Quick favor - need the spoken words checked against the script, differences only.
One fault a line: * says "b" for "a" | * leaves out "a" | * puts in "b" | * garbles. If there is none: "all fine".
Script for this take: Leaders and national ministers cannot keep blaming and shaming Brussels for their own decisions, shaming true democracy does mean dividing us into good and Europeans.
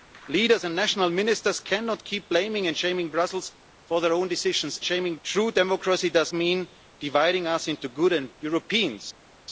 all fine